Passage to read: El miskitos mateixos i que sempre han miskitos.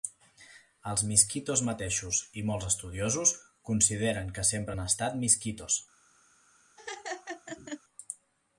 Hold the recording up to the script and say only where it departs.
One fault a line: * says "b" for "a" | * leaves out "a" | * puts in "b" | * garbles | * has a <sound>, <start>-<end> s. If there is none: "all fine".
* says "Els" for "El"
* puts in "molts estudiosos consideren"
* puts in "estat"
* has a laugh, 6.8-7.8 s